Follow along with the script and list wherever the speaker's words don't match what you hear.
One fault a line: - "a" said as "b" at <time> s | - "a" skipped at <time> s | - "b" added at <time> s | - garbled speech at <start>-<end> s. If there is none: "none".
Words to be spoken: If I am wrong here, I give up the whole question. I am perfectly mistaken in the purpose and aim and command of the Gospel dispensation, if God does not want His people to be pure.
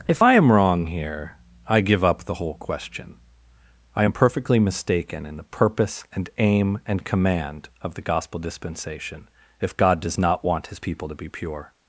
none